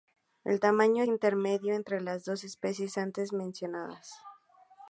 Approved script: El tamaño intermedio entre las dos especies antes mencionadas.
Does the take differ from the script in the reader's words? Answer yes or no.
no